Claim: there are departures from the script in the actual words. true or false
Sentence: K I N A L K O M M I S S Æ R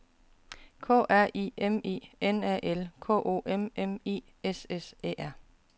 true